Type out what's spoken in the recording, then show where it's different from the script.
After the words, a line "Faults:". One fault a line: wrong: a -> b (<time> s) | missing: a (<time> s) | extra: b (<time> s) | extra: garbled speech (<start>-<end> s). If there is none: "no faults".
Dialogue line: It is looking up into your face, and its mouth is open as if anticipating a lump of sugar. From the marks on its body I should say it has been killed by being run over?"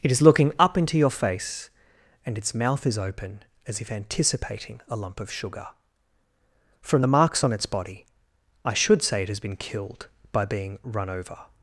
It is looking up into your face, and its mouth is open as if anticipating a lump of sugar. From the marks on its body I should say it has been killed by being run over?"
Faults:
no faults